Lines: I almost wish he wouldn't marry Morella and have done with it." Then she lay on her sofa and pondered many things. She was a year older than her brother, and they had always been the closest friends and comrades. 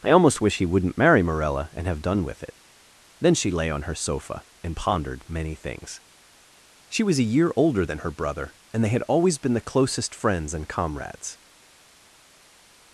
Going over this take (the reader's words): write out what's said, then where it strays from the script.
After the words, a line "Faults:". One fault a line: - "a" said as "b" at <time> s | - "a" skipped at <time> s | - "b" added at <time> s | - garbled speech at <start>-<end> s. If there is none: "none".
I almost wish he wouldn't marry Morella and have done with it." Then she lay on her sofa and pondered many things. She was a year older than her brother, and they had always been the closest friends and comrades.
Faults:
none